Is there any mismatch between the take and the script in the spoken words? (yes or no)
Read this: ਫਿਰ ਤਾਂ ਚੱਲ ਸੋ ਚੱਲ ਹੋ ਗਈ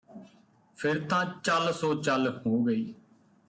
no